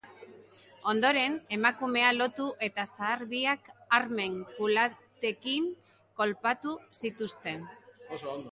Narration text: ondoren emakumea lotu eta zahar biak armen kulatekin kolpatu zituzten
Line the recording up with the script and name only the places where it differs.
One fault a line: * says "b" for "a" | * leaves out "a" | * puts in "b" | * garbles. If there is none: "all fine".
all fine